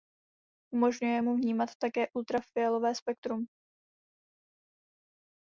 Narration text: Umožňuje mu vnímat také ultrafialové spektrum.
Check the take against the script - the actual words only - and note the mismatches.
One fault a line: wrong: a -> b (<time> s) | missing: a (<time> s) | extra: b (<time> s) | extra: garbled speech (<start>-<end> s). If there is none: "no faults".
no faults